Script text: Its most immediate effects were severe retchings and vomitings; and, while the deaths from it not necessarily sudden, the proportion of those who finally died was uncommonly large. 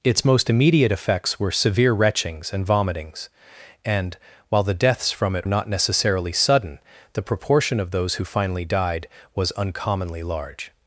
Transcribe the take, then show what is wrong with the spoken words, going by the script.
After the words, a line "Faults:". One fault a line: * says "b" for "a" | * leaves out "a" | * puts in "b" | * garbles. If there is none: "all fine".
Its most immediate effects were severe retchings and vomitings; and, while the deaths from it not necessarily sudden, the proportion of those who finally died was uncommonly large.
Faults:
all fine